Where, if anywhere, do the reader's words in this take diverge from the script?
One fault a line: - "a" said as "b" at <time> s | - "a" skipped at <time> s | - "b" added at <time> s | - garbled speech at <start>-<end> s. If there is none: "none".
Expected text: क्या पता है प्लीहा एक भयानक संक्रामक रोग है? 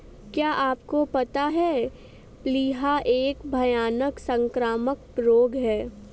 - "आपको" added at 0.5 s